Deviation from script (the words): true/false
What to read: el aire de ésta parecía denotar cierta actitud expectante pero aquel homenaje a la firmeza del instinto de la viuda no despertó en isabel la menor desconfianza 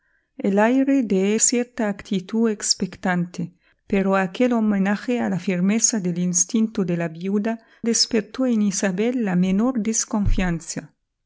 true